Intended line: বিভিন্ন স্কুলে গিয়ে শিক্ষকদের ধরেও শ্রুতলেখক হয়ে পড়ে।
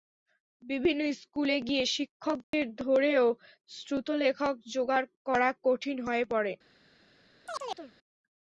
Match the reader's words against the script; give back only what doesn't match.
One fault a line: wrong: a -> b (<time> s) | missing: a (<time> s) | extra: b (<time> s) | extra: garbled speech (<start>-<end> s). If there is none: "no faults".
extra: জোগাড় করা কঠিন (4.7 s)